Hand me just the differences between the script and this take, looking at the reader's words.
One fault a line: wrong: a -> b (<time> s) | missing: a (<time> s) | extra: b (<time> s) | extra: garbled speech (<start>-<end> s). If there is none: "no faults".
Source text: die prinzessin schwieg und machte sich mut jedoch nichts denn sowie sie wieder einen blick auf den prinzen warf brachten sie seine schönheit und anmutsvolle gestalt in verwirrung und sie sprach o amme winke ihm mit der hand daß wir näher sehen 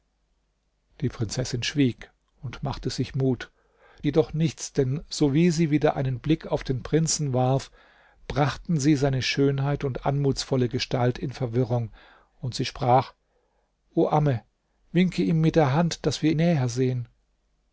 no faults